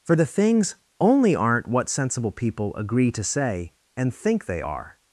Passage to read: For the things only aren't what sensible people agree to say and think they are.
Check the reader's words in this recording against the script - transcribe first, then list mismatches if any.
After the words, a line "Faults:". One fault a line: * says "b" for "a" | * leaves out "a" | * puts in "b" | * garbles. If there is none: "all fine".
For the things only aren't what sensible people agree to say and think they are.
Faults:
all fine